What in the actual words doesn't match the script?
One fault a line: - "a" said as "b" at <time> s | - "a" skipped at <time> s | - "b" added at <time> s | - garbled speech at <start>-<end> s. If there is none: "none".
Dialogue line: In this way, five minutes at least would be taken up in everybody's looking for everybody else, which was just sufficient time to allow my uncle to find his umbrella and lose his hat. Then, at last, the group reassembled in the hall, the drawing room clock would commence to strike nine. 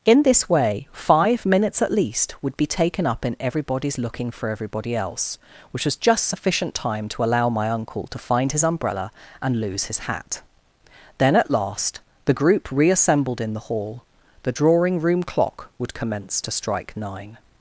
none